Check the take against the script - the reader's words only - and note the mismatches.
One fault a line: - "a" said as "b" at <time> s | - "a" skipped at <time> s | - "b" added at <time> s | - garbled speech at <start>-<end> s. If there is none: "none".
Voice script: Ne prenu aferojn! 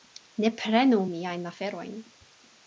- "miajn" added at 1.1 s